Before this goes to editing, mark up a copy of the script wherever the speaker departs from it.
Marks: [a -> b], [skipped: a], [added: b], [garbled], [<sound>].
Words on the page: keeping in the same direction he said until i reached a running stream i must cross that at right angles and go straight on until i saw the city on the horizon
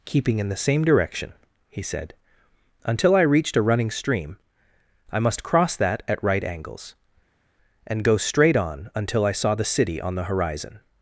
keeping in the same direction he said until i reached a running stream i must cross that at right angles and go straight on until i saw the city on the horizon